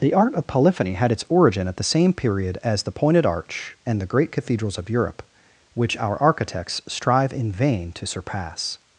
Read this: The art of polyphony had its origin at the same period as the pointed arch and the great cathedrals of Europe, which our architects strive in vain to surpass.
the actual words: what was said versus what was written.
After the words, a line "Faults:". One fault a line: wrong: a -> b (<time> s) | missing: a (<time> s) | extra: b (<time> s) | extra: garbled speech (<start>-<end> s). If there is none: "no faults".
The art of polyphony had its origin at the same period as the pointed arch and the great cathedrals of Europe, which our architects strive in vain to surpass.
Faults:
no faults